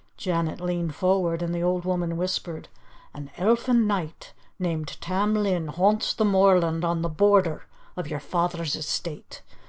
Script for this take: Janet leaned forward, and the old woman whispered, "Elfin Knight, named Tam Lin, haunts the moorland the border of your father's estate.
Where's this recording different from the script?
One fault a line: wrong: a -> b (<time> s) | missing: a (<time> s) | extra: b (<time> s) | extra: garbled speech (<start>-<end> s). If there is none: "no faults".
extra: An (3.1 s)
extra: on (6.8 s)